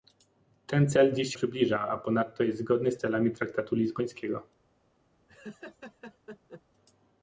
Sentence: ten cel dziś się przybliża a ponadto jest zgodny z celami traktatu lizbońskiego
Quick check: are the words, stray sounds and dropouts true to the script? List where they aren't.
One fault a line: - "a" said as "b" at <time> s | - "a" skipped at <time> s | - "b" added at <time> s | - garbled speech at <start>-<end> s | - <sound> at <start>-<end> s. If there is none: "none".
- "się" skipped at 1.3 s
- laugh at 5.3-6.6 s